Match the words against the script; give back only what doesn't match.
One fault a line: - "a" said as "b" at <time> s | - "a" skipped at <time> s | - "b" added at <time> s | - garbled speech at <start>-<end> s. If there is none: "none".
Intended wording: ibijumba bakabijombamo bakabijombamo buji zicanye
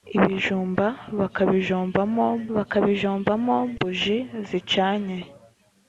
none